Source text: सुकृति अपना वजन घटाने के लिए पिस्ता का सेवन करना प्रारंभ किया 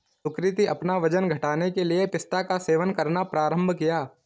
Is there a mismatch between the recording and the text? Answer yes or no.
no